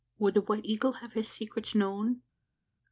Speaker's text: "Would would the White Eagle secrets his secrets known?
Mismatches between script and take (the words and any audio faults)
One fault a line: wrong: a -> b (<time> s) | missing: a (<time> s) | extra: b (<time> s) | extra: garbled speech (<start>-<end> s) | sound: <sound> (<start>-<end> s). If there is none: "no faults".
missing: would (0.3 s)
wrong: secrets -> have (0.9 s)